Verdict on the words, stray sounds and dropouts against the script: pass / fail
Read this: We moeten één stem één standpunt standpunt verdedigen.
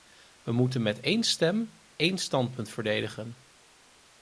fail